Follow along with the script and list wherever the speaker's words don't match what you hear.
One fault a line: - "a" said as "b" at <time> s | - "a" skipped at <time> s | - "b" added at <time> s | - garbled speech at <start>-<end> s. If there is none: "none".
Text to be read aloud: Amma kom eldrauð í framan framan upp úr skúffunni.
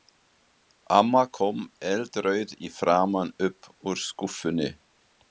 - "framan" skipped at 3.3 s